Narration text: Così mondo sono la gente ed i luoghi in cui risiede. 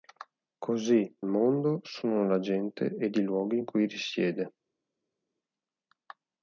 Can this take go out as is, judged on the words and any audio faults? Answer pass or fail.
pass